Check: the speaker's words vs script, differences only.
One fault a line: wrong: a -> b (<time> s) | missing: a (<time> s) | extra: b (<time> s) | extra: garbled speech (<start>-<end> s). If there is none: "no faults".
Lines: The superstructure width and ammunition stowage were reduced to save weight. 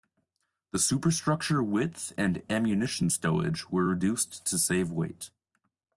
no faults